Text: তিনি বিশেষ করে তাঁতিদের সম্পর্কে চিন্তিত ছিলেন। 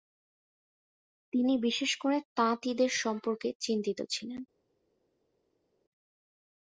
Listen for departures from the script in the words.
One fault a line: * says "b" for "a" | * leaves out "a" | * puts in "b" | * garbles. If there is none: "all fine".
all fine